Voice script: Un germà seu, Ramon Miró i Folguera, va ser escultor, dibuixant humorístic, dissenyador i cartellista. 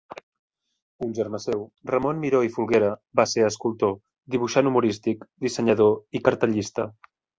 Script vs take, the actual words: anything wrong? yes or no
no